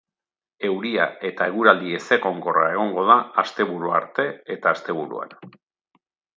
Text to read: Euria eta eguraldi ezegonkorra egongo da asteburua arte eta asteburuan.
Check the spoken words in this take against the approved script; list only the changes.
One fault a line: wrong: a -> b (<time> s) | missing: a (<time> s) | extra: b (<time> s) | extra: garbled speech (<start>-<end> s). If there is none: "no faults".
no faults